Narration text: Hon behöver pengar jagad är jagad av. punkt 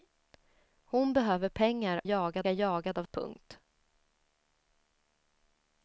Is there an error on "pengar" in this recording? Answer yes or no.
no